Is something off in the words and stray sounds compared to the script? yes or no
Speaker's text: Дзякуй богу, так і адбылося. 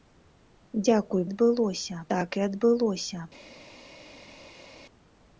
yes